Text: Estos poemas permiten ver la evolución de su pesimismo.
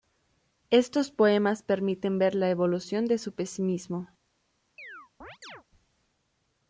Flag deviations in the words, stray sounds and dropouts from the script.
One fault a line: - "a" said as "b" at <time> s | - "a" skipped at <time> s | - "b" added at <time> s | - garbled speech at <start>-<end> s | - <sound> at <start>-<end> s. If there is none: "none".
- chirp at 4.8-5.6 s